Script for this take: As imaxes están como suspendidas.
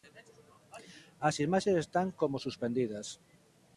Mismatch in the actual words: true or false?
false